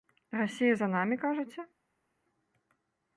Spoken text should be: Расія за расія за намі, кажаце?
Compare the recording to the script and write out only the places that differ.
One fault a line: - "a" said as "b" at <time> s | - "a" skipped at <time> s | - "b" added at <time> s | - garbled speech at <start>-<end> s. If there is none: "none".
- "расія за" skipped at 0.9 s